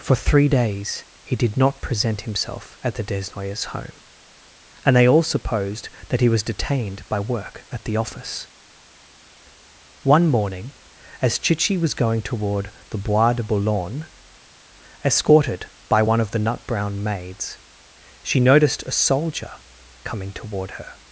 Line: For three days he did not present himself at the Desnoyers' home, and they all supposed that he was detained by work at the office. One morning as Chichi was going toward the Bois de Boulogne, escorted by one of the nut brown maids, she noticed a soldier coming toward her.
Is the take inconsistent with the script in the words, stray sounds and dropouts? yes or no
no